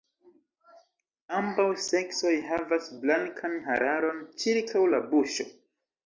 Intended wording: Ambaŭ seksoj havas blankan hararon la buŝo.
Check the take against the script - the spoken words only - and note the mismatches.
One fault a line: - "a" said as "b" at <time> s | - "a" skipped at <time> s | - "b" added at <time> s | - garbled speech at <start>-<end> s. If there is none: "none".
- "ĉirkaŭ" added at 4.4 s